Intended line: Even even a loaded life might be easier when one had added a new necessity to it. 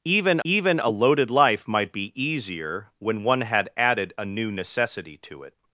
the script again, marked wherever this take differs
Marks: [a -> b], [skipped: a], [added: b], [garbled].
Even even a loaded life might be easier when one had added a new necessity to it.